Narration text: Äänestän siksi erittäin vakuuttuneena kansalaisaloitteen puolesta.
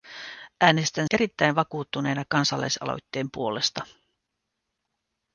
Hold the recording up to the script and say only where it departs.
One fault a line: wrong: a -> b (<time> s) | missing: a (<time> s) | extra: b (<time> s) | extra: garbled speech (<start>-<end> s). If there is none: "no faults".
missing: siksi (1.1 s)